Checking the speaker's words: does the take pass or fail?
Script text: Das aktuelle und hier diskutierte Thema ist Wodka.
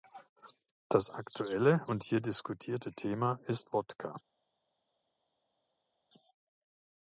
pass